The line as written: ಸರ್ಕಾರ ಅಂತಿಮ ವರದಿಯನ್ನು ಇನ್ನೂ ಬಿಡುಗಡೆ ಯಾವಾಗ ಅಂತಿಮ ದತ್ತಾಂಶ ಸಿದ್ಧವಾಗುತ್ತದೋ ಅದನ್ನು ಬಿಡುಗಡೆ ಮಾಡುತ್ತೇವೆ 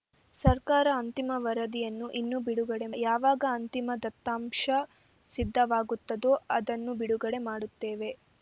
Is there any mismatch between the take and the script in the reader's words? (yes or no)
no